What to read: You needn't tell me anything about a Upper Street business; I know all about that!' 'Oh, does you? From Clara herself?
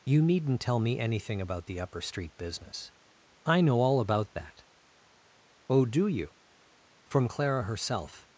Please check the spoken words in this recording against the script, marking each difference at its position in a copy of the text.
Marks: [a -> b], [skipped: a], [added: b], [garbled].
You needn't tell me anything about [a -> the] Upper Street business; I know all about that!' 'Oh, [does -> do] you? From Clara herself?